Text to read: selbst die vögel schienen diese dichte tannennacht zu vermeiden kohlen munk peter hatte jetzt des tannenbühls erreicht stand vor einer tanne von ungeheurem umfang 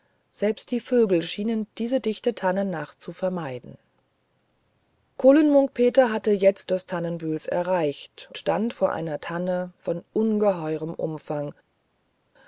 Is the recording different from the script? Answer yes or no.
no